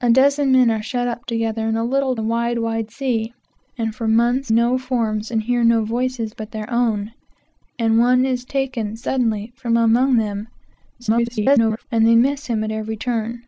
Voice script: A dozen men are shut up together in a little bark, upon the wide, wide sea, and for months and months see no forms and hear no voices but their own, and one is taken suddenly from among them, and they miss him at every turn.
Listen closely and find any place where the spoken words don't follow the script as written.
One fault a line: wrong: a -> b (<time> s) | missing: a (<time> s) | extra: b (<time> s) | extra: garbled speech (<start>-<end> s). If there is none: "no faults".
missing: bark upon (2.1 s)
missing: and months see (4.5 s)
extra: garbled speech (11.0-11.9 s)